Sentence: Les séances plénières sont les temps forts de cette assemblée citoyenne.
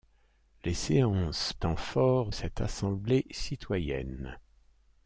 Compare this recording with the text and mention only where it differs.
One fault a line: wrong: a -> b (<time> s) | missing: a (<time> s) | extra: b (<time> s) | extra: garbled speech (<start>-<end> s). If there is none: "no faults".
missing: plénières sont les (1.5 s)
missing: de (2.3 s)